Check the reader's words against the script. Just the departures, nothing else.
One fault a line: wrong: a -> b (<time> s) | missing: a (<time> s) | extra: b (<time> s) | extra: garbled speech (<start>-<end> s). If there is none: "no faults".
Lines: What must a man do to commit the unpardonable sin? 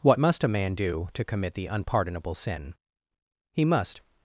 extra: He must (3.5 s)